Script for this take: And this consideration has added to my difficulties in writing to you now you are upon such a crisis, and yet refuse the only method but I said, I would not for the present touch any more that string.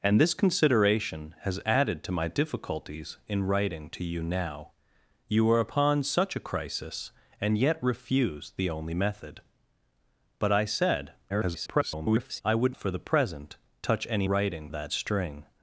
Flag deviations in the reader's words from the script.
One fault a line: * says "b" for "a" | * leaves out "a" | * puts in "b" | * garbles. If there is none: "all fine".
* garbles
* leaves out "not"
* says "writing" for "more"